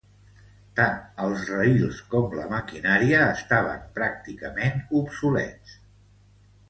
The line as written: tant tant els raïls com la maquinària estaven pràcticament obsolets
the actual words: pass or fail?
fail